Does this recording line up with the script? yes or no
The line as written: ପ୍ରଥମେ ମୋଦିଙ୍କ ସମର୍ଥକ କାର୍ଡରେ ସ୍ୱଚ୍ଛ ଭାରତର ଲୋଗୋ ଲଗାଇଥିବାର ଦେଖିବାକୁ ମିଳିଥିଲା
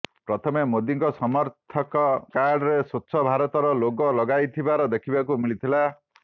yes